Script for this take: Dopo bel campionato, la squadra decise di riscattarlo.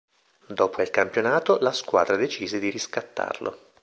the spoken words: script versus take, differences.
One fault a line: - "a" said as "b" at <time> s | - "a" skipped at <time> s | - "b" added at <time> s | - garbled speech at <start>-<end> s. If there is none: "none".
none